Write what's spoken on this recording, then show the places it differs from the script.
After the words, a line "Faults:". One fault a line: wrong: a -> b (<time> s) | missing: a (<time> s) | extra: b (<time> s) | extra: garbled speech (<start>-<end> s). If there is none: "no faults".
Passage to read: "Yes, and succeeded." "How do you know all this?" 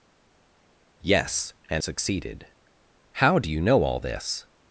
"Yes, and succeeded." "How do you know all this?"
Faults:
no faults